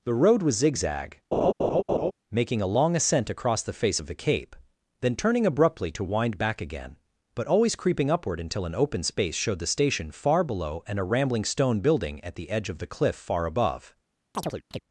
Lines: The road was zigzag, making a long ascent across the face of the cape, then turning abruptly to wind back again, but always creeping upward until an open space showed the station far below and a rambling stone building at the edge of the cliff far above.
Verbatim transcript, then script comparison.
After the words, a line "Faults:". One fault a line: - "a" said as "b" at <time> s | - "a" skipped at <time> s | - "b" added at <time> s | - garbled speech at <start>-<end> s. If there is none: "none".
The road was zigzag, making a long ascent across the face of the cape, then turning abruptly to wind back again, but always creeping upward until an open space showed the station far below and a rambling stone building at the edge of the cliff far above.
Faults:
none